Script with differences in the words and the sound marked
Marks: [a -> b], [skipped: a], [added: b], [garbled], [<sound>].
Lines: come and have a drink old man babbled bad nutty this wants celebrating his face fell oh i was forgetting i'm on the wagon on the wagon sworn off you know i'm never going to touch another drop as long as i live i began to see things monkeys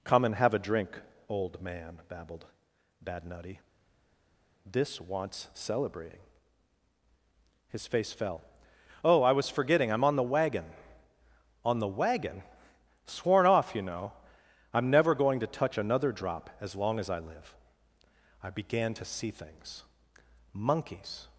come and have a drink old man babbled bad nutty this wants celebrating his face fell oh i was forgetting i'm on the wagon on the wagon sworn off you know i'm never going to touch another drop as long as i live i began to see things monkeys